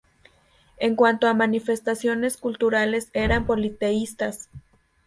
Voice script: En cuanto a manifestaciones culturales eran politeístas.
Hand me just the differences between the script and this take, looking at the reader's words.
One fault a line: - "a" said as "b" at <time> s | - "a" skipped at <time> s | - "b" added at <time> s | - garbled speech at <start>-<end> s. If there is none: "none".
none